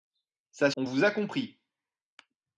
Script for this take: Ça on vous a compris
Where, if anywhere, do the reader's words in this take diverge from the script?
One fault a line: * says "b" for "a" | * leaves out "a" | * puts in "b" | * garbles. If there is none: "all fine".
all fine